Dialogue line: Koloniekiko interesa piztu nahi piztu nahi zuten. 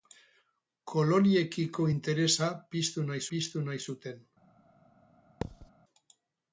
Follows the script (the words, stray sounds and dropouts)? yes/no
no